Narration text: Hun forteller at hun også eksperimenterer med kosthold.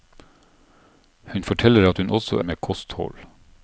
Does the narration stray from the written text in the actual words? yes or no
yes